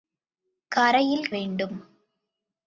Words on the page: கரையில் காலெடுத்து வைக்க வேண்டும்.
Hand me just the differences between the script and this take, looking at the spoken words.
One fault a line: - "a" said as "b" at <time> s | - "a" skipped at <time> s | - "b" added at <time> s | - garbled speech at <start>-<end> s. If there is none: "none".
- "காலெடுத்து வைக்க" skipped at 1.3 s